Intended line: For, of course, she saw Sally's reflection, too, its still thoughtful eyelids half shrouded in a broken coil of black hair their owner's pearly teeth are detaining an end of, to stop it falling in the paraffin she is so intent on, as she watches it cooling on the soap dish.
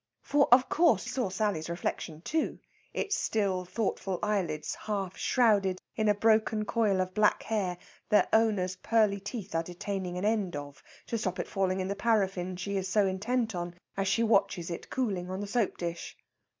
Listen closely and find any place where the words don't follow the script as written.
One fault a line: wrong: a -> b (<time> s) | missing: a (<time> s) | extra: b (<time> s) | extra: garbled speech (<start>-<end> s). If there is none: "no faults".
missing: she (1.1 s)